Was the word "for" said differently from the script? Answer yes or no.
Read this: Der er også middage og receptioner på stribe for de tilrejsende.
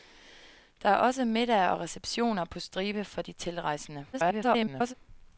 no